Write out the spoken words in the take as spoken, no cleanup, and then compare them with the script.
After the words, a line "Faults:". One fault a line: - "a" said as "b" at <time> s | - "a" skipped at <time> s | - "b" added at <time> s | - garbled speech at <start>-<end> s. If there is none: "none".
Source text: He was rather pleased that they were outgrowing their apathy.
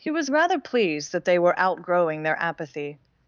He was rather pleased that they were outgrowing their apathy.
Faults:
none